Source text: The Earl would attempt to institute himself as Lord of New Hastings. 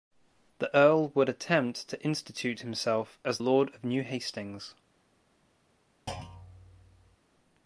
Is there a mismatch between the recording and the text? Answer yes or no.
no